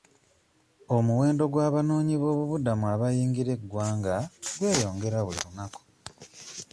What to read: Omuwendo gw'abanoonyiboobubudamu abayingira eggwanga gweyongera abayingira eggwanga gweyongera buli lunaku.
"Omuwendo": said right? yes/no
yes